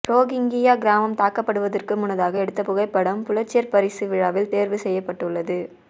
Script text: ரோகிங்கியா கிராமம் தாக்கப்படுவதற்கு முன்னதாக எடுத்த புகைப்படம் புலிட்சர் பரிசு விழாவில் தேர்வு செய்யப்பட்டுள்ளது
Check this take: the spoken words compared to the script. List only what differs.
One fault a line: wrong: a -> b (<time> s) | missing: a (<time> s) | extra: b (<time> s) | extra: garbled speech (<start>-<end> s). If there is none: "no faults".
no faults